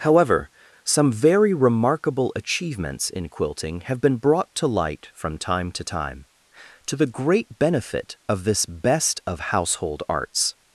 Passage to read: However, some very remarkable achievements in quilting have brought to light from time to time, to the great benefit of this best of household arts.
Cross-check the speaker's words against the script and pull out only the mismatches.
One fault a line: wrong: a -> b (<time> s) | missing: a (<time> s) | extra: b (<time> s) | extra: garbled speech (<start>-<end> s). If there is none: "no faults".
extra: been (4.0 s)